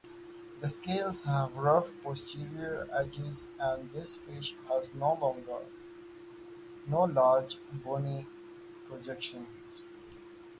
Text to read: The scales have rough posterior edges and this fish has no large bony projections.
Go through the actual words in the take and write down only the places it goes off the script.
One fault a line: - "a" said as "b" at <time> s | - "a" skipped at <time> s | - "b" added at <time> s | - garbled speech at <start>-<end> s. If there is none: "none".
none